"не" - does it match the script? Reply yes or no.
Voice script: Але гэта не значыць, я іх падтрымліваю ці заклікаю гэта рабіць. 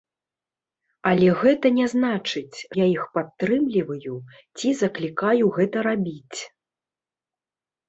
yes